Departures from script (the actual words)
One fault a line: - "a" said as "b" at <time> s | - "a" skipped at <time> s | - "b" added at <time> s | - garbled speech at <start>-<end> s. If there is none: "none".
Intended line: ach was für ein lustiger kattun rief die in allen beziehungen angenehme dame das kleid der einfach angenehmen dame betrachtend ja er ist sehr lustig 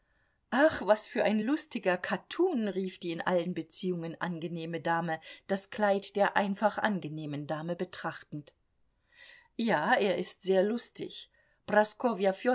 none